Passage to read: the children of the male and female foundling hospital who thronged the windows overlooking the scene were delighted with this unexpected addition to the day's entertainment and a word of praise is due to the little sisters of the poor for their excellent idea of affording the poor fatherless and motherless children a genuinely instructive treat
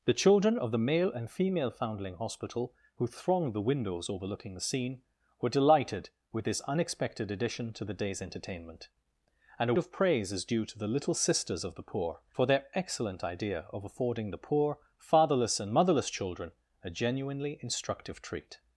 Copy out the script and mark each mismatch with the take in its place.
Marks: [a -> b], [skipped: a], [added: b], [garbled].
the children of the male and female foundling hospital who thronged the windows overlooking the scene were delighted with this unexpected addition to the day's entertainment and a [skipped: word] of praise is due to the little sisters of the poor for their excellent idea of affording the poor fatherless and motherless children a genuinely instructive treat